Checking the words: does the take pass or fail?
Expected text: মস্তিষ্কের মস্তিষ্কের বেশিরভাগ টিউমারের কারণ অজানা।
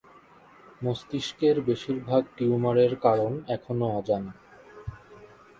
fail